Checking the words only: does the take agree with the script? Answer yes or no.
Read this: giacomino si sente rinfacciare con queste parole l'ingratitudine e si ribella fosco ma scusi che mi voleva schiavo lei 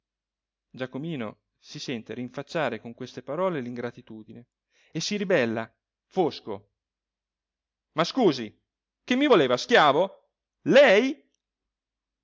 yes